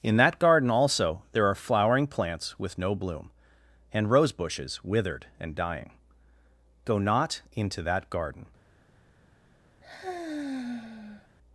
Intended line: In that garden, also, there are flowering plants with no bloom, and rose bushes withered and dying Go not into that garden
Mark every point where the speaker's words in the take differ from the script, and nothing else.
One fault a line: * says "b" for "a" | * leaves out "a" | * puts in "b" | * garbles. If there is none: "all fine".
all fine